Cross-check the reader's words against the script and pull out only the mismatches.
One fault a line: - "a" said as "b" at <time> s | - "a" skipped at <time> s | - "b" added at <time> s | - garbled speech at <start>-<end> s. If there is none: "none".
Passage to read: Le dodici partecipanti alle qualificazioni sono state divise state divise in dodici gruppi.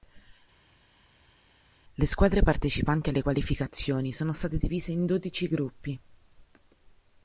- "dodici" said as "squadre" at 2.1 s
- "state divise" skipped at 4.9 s